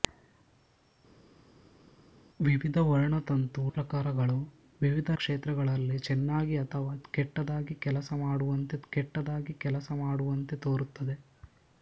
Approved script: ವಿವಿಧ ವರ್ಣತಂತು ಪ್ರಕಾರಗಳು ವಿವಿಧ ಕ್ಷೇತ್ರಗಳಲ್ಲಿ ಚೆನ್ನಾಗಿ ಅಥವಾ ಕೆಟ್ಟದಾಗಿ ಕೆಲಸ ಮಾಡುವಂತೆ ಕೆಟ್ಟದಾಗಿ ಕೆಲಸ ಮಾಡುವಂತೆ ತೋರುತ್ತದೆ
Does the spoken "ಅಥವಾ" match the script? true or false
true